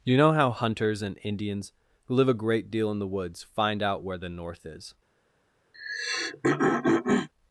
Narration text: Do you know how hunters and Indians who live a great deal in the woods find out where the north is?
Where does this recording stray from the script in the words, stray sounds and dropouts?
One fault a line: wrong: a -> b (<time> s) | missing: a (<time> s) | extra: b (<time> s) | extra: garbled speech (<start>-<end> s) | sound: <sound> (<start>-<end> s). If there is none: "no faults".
missing: Do (0.0 s)
sound: throat clearing (5.7-7.3 s)